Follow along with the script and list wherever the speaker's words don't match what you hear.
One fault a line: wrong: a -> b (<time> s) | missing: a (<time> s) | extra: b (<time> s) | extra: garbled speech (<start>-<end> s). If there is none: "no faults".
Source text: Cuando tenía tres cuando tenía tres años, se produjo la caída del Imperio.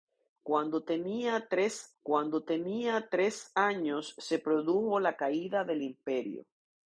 no faults